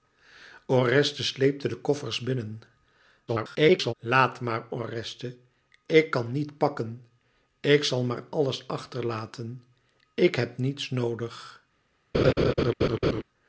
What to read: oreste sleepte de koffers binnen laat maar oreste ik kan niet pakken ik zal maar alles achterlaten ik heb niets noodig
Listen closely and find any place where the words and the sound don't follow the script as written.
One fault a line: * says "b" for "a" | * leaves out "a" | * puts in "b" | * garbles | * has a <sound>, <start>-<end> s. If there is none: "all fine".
* garbles
* has a laugh, 12.1-13.2 s